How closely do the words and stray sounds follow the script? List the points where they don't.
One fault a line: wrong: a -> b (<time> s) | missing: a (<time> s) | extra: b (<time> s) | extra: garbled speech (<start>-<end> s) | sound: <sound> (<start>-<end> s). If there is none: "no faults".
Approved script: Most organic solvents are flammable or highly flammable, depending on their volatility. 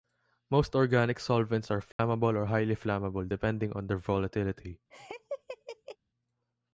sound: dropout (1.9-2.0 s)
sound: laugh (4.9-6.0 s)